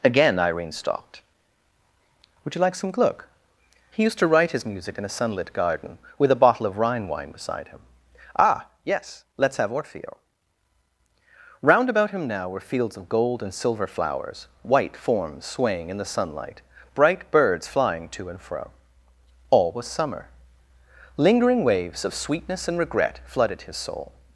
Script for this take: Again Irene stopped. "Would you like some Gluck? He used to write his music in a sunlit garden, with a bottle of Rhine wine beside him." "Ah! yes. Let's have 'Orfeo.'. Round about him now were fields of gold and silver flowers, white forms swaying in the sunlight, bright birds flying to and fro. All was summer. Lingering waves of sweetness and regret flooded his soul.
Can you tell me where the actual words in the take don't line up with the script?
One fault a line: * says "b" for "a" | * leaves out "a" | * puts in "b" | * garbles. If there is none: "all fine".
all fine